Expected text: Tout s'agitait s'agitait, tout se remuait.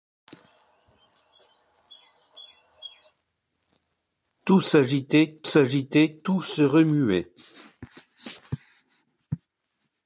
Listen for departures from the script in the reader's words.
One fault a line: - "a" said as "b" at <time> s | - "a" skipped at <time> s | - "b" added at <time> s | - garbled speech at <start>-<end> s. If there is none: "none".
none